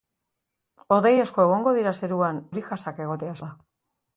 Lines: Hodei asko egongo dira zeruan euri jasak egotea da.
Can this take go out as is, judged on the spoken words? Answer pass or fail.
pass